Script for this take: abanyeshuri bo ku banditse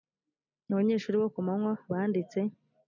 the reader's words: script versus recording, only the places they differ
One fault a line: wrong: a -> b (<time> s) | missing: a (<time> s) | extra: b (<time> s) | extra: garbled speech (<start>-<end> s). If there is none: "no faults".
extra: manywa (1.5 s)